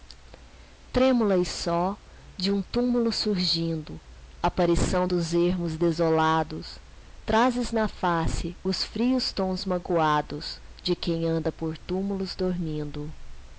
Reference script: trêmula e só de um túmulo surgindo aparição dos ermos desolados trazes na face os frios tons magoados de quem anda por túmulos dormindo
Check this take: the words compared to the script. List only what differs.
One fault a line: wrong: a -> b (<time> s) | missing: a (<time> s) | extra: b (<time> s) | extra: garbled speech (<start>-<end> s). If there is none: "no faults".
no faults